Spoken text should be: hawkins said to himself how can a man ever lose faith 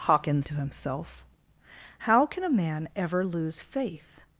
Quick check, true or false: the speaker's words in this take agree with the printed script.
false